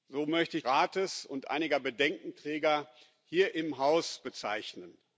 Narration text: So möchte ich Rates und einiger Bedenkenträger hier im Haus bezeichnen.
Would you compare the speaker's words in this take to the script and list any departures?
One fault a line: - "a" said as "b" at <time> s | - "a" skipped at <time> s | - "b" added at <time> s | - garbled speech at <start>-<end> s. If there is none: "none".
none